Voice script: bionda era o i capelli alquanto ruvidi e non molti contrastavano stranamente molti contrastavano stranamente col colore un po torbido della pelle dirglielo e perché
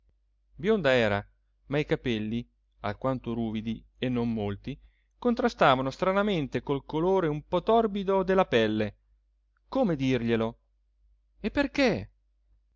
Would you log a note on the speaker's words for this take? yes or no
yes